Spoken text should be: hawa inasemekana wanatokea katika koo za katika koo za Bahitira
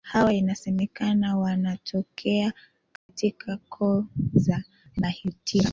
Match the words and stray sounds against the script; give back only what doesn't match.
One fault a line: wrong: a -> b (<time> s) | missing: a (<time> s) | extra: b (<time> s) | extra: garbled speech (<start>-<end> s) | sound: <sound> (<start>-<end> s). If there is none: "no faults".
sound: dropout (3.0-3.1 s)
missing: katika koo za (4.6 s)